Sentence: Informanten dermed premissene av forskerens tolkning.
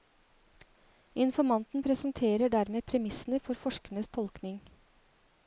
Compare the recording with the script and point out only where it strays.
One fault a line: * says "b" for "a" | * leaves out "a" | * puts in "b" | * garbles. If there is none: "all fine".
* puts in "presenterer"
* says "for" for "av"